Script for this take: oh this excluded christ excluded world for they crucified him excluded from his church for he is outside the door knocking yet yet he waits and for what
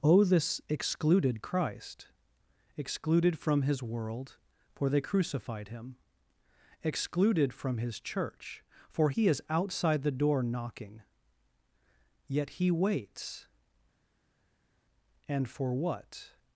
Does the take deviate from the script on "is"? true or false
false